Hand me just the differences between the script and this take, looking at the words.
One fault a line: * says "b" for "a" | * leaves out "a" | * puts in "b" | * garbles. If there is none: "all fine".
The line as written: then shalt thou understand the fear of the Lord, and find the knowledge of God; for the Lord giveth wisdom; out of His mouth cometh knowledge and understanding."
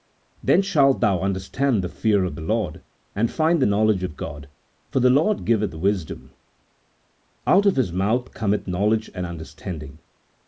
all fine